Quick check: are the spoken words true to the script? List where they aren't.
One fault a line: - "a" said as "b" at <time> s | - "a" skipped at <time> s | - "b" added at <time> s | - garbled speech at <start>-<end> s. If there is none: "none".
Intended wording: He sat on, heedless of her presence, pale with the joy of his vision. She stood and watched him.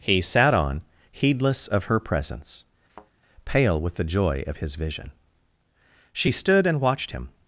none